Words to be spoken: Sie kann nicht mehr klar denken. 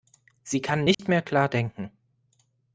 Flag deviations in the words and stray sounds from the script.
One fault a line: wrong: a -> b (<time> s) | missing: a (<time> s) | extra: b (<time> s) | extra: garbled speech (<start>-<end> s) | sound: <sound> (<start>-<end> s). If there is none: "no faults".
sound: dropout (0.9-1.0 s)